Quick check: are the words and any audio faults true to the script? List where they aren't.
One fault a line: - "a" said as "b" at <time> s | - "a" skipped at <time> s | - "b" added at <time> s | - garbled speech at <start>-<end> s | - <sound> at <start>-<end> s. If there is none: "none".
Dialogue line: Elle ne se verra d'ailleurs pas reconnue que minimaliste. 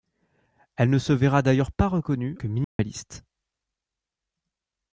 - dropout at 2.6-2.8 s